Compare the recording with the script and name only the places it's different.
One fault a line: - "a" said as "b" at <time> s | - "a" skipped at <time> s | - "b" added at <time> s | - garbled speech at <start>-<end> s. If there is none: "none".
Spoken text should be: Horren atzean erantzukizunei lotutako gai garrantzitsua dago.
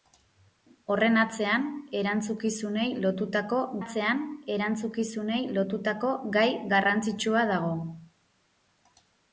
- "atzean erantzukizunei lotutako" added at 3.8 s